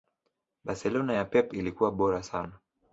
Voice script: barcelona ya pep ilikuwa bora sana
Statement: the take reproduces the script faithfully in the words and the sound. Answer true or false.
true